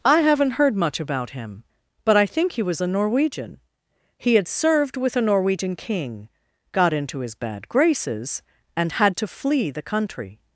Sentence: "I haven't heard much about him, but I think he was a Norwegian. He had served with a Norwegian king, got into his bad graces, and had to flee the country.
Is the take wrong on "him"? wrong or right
right